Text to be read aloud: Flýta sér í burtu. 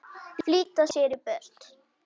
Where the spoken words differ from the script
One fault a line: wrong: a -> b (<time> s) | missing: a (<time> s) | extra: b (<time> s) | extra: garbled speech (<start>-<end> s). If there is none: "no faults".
no faults